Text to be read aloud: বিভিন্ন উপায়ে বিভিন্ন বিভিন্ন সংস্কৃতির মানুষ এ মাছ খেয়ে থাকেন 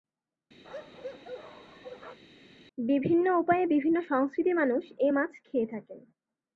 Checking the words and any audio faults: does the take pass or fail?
fail